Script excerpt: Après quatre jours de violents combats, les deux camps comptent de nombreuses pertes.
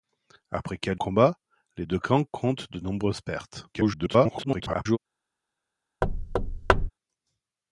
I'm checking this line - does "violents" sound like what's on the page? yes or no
no